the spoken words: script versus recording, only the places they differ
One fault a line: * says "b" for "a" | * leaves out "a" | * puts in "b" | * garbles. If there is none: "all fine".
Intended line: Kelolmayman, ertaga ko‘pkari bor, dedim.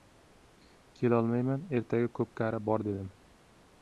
all fine